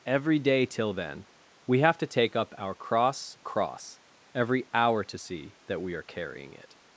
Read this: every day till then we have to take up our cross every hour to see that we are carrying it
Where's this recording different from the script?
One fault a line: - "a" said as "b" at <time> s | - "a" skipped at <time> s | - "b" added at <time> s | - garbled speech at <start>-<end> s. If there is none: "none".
- "cross" added at 3.4 s